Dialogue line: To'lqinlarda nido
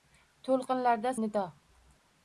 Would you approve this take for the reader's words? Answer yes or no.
yes